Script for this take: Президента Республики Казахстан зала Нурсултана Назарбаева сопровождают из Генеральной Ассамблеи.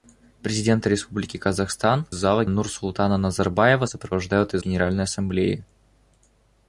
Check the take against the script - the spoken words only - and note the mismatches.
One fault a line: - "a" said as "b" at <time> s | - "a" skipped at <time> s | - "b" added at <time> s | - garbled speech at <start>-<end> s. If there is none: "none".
none